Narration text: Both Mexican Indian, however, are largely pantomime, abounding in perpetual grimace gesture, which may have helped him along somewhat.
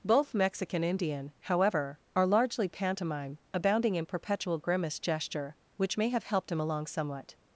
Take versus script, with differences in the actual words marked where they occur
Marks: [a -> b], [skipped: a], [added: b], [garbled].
Both Mexican Indian, however, are largely pantomime, abounding in perpetual grimace gesture, which may have helped him along somewhat.